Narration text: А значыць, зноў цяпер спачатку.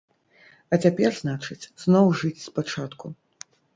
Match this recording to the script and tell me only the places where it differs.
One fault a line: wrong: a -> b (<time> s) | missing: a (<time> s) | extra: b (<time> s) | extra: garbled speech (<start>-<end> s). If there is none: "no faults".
extra: цяпер (0.8 s)
wrong: цяпер -> жыць (2.2 s)